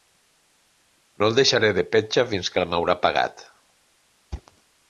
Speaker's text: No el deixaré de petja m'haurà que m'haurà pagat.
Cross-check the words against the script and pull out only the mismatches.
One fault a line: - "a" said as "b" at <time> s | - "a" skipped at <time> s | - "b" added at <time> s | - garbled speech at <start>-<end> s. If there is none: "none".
- "m'haurà" said as "fins" at 2.3 s